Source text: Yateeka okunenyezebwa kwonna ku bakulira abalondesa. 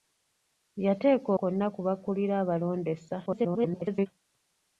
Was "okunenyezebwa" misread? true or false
true